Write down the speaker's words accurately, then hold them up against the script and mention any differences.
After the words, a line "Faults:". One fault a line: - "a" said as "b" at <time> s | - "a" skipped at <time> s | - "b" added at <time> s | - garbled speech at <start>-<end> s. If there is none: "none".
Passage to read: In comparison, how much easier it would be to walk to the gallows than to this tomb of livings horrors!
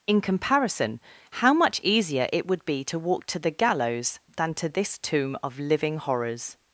In comparison, how much easier it would be to walk to the gallows than to this tomb of living horrors!
Faults:
- "livings" said as "living" at 5.6 s